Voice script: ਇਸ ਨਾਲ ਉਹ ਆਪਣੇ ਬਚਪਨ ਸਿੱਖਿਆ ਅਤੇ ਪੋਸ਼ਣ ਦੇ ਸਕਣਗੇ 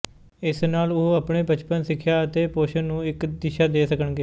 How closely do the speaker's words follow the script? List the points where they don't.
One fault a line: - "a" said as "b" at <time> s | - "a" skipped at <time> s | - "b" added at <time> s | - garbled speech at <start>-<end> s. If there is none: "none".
- "ਨੂੰ ਇੱਕ ਦਿਸ਼ਾ" added at 2.8 s